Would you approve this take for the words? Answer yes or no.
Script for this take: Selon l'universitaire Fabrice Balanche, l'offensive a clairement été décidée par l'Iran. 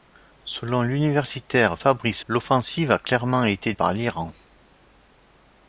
no